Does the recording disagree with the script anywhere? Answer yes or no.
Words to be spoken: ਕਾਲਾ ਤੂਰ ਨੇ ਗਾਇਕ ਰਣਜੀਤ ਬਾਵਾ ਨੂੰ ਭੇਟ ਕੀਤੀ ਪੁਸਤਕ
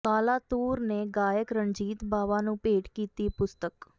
no